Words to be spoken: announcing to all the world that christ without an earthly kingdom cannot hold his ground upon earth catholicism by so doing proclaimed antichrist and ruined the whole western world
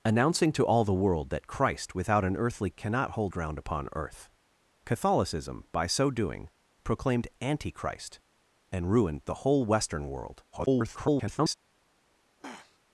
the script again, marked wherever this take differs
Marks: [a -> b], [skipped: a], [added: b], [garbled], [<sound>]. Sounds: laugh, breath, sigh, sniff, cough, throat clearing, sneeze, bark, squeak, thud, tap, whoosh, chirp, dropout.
announcing to all the world that christ without an earthly [skipped: kingdom] cannot hold [skipped: his] ground upon earth catholicism by so doing proclaimed antichrist and ruined the whole western world [garbled] [throat clearing]